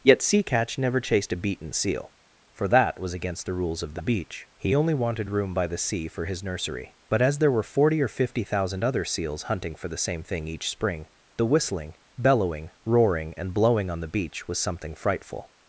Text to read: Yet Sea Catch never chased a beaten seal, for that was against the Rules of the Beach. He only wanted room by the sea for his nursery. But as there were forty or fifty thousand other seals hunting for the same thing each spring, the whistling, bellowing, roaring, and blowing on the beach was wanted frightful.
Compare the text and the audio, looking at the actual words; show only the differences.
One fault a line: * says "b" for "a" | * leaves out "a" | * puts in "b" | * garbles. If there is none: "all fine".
* says "something" for "wanted"